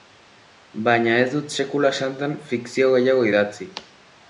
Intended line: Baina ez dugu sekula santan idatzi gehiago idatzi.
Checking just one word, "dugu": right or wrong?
wrong